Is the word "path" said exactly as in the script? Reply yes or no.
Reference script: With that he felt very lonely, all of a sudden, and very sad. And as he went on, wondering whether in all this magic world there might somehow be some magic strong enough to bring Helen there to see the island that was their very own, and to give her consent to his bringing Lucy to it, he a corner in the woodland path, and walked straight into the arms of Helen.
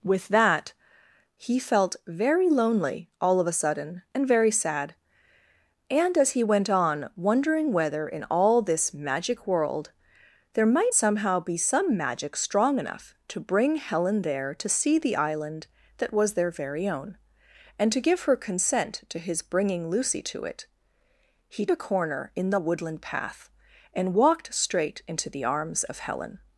yes